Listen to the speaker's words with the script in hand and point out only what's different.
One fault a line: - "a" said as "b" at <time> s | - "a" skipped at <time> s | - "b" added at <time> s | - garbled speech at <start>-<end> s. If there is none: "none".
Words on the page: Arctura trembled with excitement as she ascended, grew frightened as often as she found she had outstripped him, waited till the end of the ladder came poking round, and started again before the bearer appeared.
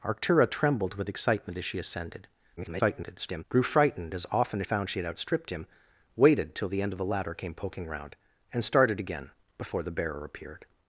- garbled speech at 2.6-3.4 s
- "she" skipped at 4.7 s